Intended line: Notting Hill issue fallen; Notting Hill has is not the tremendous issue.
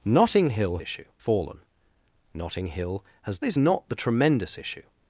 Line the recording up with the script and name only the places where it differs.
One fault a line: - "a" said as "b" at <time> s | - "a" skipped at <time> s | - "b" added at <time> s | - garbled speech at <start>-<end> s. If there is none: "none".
none